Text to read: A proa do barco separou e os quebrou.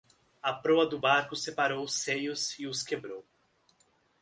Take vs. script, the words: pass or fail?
fail